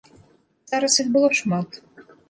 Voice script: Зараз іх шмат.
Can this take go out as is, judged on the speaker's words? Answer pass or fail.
fail